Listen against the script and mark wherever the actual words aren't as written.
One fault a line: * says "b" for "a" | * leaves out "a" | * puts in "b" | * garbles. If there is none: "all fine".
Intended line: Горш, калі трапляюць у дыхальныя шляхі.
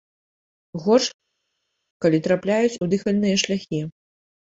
all fine